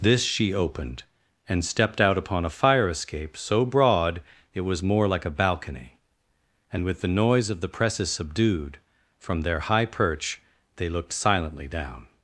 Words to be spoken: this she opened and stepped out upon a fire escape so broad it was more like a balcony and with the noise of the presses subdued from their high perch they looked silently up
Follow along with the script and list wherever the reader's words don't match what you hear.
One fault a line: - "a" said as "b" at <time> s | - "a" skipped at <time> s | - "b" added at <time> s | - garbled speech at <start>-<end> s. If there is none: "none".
- "up" said as "down" at 11.7 s